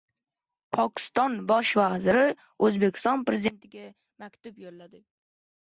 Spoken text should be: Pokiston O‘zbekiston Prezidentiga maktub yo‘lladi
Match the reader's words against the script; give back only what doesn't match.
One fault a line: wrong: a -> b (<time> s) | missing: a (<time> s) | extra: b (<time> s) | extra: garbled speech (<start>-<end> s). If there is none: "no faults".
extra: Bosh vaziri (1.5 s)